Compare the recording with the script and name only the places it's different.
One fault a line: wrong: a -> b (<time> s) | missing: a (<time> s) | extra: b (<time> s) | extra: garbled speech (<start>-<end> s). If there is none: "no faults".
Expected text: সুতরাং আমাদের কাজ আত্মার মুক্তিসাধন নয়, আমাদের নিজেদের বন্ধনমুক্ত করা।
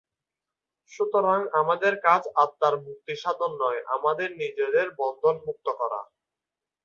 no faults